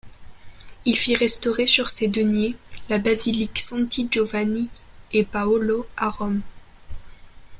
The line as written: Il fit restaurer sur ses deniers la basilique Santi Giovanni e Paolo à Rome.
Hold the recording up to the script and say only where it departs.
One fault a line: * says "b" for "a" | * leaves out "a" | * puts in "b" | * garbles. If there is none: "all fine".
all fine